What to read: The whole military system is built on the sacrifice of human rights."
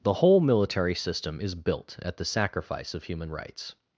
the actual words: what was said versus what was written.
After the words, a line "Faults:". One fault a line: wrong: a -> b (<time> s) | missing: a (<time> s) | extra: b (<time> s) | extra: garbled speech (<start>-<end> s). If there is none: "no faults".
The whole military system is built at the sacrifice of human rights."
Faults:
wrong: on -> at (2.0 s)